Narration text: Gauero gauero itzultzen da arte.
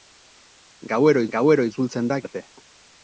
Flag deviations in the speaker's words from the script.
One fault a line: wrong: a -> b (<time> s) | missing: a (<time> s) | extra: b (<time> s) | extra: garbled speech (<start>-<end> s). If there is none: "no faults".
no faults